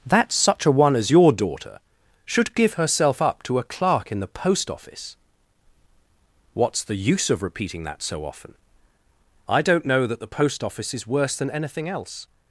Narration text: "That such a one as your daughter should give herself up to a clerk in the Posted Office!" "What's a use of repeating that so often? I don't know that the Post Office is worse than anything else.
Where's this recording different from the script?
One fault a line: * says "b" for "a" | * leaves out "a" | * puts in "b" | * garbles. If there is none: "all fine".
* says "Post" for "Posted"
* says "the" for "a"